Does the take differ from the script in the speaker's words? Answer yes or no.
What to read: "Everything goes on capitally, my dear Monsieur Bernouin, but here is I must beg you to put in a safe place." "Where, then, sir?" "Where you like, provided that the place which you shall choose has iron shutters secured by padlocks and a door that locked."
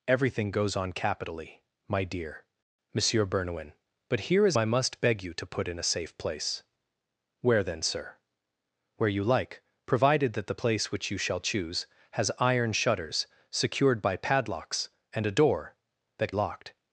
no